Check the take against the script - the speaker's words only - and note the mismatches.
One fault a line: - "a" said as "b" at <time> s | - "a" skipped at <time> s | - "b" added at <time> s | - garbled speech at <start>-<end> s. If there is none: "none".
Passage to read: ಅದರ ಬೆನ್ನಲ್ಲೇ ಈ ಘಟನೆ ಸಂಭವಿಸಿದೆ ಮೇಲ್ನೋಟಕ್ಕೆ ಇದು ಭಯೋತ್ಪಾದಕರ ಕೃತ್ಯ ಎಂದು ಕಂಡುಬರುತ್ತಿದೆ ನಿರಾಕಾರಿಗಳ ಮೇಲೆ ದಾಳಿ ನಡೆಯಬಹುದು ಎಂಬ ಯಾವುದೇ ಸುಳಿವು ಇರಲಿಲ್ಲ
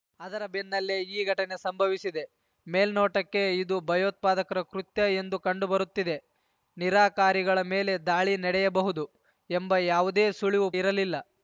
none